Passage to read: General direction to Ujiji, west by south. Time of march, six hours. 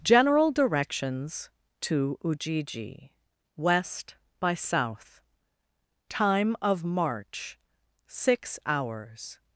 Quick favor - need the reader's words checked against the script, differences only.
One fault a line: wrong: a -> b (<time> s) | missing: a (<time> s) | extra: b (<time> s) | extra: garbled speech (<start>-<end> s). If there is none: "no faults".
wrong: direction -> directions (0.5 s)